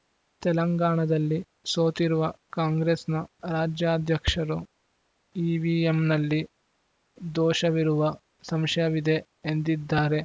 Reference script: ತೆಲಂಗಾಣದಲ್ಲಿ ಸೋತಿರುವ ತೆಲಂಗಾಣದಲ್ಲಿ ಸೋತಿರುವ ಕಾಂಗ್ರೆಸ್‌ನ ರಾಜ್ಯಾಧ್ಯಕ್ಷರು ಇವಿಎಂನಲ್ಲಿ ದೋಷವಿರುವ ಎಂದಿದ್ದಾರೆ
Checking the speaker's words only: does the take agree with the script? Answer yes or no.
no